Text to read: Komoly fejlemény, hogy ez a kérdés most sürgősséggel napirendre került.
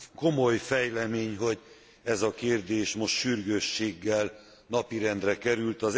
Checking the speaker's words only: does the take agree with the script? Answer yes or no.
yes